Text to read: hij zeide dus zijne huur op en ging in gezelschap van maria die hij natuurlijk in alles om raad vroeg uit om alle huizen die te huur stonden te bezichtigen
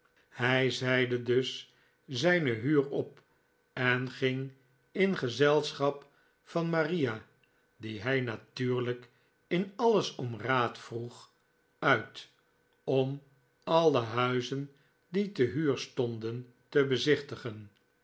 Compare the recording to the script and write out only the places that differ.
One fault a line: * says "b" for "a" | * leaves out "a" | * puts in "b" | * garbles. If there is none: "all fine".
all fine